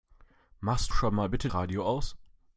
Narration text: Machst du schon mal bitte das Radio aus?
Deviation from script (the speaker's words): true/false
true